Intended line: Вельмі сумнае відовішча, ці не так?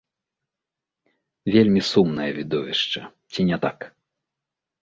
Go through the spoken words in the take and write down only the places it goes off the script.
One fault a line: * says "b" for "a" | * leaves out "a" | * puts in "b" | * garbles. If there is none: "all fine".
all fine